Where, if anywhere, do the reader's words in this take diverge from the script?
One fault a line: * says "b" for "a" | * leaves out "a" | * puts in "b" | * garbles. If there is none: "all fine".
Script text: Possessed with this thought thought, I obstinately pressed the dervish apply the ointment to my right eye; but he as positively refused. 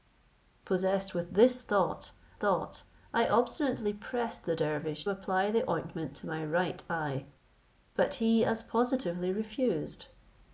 all fine